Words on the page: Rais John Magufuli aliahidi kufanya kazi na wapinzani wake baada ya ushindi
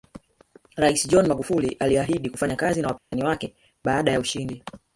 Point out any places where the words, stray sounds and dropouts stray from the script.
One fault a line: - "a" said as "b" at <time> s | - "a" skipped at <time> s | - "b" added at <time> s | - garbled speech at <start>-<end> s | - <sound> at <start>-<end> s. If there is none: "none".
- dropout at 3.0-3.1 s